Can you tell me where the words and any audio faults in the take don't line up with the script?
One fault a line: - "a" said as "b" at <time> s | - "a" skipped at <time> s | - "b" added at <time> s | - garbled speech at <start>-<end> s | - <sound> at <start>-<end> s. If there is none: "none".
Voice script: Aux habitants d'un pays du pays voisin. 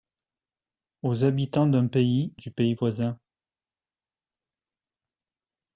none